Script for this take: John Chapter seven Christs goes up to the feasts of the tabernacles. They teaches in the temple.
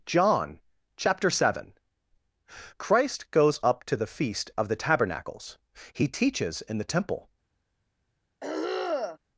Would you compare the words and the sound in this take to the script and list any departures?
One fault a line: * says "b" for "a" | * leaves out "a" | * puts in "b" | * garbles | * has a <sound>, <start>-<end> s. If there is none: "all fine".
* says "Christ" for "Christs"
* says "feast" for "feasts"
* says "He" for "They"
* has a throat clearing, 8.4-9.2 s